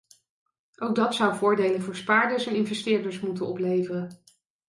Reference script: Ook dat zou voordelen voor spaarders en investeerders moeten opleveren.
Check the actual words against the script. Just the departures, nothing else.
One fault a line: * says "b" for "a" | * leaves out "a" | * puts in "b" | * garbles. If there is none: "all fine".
all fine